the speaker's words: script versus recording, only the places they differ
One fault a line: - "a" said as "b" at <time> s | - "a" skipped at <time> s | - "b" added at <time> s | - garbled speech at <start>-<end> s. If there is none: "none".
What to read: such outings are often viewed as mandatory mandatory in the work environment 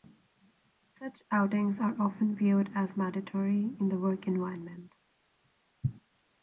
- "mandatory" skipped at 3.8 s